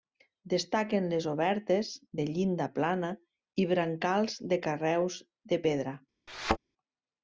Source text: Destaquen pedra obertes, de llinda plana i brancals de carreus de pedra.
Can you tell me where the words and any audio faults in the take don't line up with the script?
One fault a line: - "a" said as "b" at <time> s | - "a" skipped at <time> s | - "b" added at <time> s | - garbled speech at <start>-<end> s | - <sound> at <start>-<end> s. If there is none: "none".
- "pedra" said as "les" at 1.1 s
- thud at 6.3-6.6 s